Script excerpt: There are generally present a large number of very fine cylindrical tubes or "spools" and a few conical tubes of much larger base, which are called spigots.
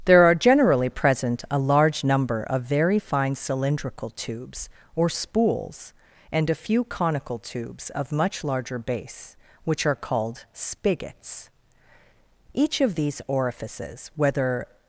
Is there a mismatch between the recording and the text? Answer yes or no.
yes